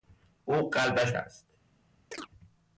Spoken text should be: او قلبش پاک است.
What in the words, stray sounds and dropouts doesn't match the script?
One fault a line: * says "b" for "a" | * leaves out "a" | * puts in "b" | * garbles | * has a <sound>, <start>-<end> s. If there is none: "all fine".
* leaves out "پاک"
* has a chirp, 2.1-2.3 s